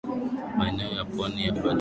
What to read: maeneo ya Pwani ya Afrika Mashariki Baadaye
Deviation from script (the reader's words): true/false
true